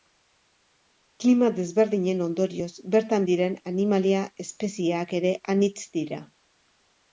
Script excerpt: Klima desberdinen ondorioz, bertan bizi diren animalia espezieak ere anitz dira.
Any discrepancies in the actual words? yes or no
yes